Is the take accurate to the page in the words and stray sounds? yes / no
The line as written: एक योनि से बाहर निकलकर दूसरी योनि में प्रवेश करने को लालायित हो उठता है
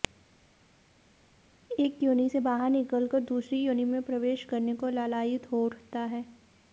yes